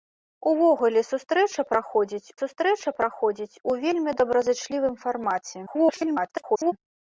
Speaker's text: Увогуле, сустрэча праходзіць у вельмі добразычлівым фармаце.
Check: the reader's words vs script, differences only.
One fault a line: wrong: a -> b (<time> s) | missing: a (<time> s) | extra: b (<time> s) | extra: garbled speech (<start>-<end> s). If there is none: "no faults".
extra: сустрэча праходзіць (2.4 s)
extra: garbled speech (5.7-6.7 s)